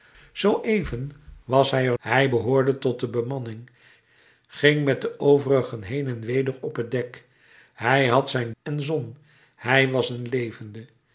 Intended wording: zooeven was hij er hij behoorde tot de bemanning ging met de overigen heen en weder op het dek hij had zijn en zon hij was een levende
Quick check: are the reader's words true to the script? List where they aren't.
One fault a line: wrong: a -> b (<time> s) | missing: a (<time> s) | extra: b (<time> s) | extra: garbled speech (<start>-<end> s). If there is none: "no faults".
no faults